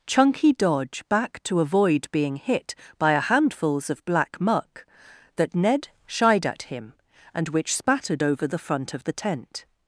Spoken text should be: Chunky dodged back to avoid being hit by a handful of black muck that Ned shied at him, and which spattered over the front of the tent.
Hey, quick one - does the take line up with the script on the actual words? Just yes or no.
no